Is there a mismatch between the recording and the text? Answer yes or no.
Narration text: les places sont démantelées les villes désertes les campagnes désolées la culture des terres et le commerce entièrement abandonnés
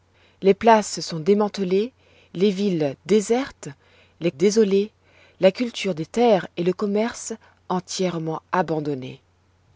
yes